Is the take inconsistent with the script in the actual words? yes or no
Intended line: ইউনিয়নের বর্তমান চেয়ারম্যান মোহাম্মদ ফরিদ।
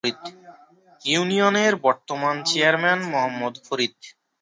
no